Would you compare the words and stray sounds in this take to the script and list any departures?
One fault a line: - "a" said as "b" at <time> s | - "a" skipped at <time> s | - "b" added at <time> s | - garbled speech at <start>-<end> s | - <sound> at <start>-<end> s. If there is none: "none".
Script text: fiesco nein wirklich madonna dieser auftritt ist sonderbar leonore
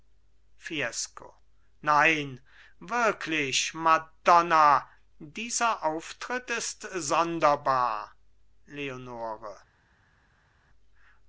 none